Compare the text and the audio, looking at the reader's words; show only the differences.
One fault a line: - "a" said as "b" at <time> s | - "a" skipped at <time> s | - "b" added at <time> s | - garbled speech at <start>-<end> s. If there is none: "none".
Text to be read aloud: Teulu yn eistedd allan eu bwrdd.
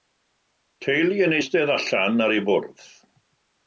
- "ar" added at 2.3 s